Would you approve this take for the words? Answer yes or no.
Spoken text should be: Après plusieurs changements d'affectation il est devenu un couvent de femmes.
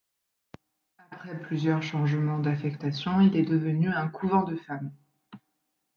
yes